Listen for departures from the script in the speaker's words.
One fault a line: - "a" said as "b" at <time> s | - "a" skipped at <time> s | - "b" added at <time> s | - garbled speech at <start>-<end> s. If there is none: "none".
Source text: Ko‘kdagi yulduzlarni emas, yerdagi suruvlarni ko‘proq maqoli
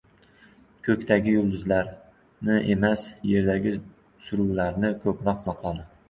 none